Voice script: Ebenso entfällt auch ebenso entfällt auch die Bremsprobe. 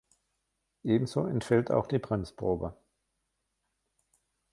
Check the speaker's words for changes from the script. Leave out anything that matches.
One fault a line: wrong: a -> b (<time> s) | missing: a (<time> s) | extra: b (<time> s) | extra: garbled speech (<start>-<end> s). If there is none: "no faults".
missing: ebenso entfällt auch (1.9 s)